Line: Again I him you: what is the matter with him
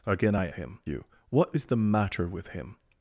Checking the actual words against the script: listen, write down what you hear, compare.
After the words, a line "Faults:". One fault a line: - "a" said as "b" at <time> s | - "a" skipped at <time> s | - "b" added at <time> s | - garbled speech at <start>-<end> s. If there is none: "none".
Again I him you: what is the matter with him
Faults:
none